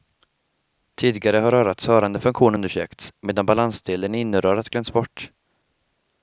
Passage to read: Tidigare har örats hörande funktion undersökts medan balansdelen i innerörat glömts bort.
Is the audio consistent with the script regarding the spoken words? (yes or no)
yes